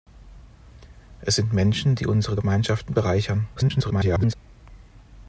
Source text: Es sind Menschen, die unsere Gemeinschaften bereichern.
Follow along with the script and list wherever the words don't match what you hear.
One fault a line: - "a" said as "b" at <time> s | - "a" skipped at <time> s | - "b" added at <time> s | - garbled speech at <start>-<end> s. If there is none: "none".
- garbled speech at 3.6-4.3 s